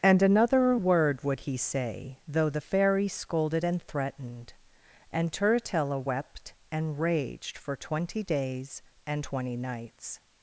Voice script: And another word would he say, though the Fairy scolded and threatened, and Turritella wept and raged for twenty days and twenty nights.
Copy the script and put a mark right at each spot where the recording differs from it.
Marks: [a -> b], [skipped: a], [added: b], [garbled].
And another word would he say, though the Fairy scolded and threatened, and Turritella wept and raged for twenty days and twenty nights.